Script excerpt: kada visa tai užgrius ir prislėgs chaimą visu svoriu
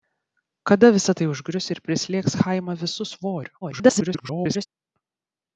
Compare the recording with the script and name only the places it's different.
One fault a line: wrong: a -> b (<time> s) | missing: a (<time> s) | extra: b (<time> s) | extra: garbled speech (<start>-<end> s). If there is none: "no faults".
extra: garbled speech (3.6-4.7 s)